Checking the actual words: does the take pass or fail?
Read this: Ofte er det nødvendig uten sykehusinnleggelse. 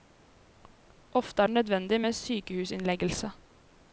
fail